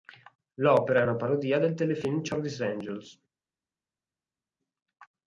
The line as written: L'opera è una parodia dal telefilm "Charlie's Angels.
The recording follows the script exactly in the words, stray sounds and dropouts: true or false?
false